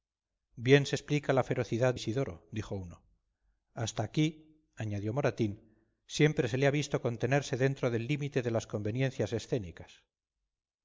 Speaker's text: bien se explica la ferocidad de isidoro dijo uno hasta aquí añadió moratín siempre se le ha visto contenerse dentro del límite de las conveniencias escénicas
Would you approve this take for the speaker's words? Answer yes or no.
no